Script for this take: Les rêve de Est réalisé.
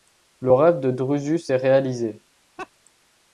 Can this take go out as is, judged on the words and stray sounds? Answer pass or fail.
fail